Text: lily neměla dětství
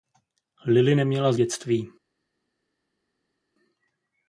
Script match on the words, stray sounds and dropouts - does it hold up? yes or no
yes